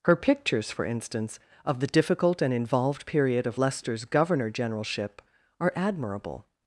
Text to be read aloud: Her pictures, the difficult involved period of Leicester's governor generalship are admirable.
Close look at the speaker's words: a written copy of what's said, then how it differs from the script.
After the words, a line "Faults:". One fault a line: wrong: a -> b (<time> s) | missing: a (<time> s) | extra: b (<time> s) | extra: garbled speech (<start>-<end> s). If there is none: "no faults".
Her pictures, for instance, of the difficult and involved period of Leicester's governor generalship are admirable.
Faults:
extra: for instance of (0.7 s)
extra: and (2.4 s)